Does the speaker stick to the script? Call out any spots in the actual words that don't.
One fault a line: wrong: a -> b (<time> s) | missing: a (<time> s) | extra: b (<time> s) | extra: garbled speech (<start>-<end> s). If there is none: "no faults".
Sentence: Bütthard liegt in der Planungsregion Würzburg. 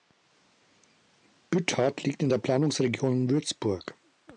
no faults